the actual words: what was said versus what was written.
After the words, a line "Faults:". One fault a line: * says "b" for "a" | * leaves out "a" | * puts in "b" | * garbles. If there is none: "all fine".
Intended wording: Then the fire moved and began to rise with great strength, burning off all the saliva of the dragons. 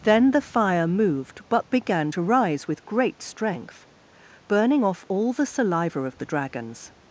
Then the fire moved but began to rise with great strength, burning off all the saliva of the dragons.
Faults:
* says "but" for "and"